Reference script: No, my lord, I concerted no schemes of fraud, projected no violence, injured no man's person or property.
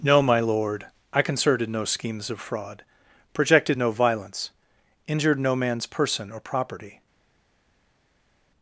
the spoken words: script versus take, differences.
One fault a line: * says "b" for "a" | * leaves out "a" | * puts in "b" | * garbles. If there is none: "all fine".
all fine